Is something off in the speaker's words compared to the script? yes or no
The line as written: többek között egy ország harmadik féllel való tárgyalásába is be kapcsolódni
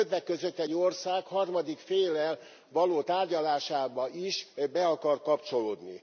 yes